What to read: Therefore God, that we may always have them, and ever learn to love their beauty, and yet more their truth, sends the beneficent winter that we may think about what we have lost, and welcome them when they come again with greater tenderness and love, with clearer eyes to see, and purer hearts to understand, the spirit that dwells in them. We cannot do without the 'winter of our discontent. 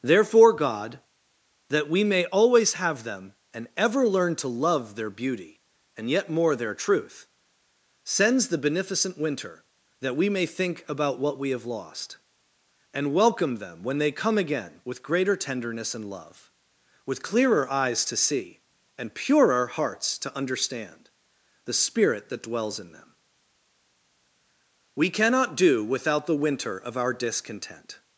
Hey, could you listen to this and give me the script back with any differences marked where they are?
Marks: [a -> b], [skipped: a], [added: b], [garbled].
Therefore God, that we may always have them, and ever learn to love their beauty, and yet more their truth, sends the beneficent winter that we may think about what we have lost, and welcome them when they come again with greater tenderness and love, with clearer eyes to see, and purer hearts to understand, the spirit that dwells in them. We cannot do without the 'winter of our discontent.